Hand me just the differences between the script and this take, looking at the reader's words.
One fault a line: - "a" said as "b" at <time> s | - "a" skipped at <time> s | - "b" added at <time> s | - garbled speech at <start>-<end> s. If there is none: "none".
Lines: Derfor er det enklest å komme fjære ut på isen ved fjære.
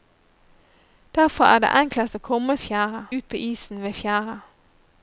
none